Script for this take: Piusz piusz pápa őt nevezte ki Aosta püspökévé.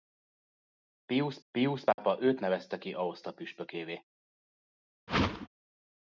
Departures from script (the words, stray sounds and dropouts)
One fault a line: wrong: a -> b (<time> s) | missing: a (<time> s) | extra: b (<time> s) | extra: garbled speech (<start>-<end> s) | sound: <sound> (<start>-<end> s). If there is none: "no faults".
sound: dropout (1.9-2.0 s)
sound: whoosh (5.1-5.5 s)